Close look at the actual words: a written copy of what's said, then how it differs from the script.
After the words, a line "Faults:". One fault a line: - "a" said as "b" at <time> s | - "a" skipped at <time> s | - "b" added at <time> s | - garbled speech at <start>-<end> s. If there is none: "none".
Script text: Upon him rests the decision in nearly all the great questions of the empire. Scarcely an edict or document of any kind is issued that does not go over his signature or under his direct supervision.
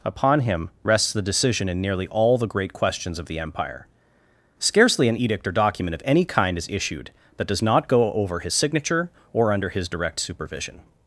Upon him rests the decision in nearly all the great questions of the empire. Scarcely an edict or document of any kind is issued that does not go over his signature or under his direct supervision.
Faults:
none